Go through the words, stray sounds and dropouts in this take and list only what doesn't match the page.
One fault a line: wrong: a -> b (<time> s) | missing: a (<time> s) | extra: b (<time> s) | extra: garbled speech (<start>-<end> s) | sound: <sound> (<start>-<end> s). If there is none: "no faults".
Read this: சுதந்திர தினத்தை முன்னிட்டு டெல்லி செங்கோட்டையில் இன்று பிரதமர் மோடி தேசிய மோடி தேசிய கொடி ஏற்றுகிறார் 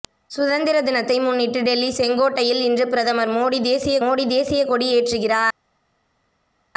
no faults